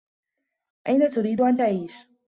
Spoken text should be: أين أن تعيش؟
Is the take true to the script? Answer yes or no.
no